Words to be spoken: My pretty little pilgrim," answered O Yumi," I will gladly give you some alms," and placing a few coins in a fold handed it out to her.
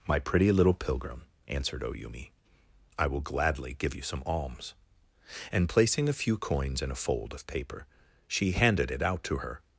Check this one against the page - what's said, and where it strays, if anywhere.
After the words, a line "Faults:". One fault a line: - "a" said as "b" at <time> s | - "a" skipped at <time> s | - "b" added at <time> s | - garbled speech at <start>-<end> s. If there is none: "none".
My pretty little pilgrim," answered O Yumi," I will gladly give you some alms," and placing a few coins in a fold of paper she handed it out to her.
Faults:
- "of paper she" added at 7.3 s